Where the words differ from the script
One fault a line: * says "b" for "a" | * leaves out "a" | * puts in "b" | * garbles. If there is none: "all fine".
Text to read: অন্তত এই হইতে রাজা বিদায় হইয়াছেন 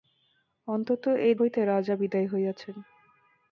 all fine